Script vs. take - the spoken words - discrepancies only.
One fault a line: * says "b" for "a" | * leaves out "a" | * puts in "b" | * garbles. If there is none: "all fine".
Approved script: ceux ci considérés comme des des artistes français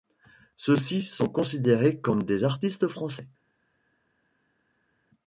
* puts in "sont"
* leaves out "des"